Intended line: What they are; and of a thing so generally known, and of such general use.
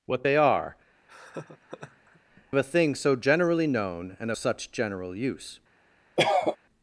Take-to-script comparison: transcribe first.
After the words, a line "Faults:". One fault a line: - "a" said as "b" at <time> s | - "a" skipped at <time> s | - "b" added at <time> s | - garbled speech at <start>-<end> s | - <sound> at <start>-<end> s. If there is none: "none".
What they are; of a thing so generally known, and such general use.
Faults:
- "and" skipped at 0.8 s
- laugh at 1.1-2.2 s
- "of" skipped at 4.3 s
- cough at 6.2-6.6 s